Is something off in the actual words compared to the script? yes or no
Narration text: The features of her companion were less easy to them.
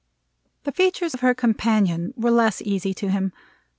yes